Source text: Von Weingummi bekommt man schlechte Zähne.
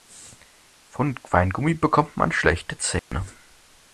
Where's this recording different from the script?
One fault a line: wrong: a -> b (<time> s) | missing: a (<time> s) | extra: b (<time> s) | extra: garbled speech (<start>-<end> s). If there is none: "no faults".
no faults